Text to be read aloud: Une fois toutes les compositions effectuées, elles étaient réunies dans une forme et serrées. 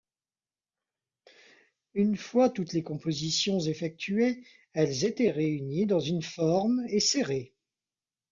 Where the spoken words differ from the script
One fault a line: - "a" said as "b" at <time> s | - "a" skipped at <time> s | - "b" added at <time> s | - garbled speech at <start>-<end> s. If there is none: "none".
none